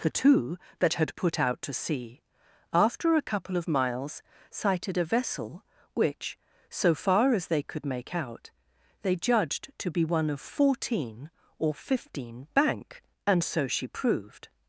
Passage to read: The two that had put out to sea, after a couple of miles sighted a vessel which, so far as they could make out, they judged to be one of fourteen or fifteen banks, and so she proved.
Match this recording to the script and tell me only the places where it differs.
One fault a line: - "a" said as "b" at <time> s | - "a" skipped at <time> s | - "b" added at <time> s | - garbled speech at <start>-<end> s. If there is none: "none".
- "banks" said as "bank" at 12.5 s